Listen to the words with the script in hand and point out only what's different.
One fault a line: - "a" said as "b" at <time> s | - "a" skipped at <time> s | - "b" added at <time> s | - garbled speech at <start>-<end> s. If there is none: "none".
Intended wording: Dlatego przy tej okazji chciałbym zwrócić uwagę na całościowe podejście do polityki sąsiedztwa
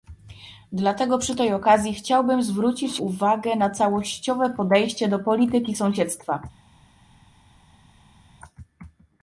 none